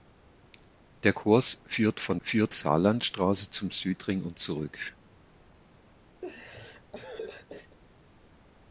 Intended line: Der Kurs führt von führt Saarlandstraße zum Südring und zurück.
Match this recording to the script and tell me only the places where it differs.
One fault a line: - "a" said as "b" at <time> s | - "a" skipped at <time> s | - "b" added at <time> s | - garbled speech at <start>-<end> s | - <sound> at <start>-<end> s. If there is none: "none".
- laugh at 6.2-7.8 s